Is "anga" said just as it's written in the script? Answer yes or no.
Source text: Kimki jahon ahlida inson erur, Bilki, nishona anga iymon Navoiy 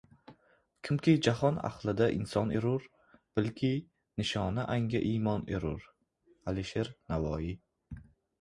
yes